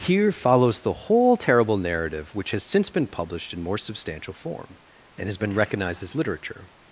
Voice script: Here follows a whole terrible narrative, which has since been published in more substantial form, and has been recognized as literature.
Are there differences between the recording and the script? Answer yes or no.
yes